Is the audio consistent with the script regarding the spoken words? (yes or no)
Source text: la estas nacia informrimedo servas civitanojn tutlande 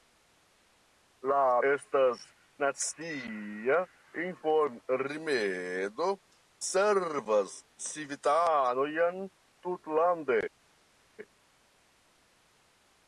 yes